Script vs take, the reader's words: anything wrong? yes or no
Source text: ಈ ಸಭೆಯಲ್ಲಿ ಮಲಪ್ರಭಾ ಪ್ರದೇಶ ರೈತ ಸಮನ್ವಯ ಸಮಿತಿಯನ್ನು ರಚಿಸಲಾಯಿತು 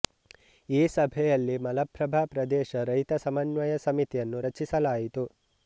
no